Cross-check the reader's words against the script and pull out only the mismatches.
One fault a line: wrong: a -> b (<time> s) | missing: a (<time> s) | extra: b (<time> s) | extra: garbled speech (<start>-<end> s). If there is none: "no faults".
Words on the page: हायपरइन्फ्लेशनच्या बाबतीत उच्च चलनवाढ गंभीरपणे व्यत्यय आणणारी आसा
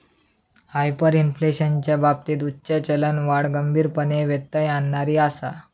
no faults